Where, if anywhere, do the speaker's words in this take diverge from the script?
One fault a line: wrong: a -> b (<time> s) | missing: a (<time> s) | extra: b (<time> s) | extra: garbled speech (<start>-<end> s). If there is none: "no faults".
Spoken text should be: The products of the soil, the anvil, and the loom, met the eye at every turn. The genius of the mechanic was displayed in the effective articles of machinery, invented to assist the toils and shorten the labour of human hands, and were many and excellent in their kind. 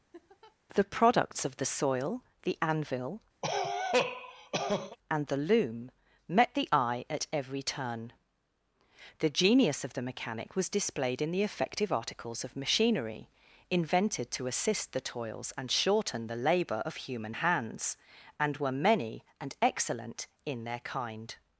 no faults